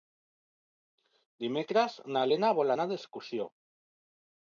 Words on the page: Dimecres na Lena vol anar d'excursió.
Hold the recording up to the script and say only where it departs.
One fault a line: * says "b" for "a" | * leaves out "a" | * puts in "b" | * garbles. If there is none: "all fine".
all fine